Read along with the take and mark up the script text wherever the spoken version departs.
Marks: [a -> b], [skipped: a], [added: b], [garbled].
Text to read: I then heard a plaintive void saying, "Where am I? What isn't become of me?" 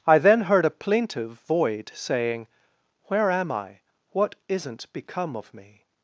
I then heard a plaintive void saying, "Where am I? What isn't become of me?"